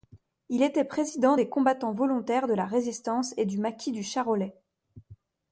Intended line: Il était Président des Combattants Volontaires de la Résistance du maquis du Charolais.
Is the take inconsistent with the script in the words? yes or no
yes